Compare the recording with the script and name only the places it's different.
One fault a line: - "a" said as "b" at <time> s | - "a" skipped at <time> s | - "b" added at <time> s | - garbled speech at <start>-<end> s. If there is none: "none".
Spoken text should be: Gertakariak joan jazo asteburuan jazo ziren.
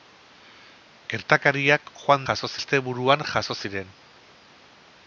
none